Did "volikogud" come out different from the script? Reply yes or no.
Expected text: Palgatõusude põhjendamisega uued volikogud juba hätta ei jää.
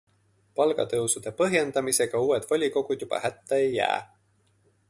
no